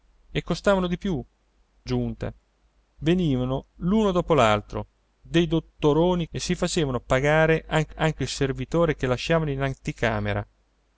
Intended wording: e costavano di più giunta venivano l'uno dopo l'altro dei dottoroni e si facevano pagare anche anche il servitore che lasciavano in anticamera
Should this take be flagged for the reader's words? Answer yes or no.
no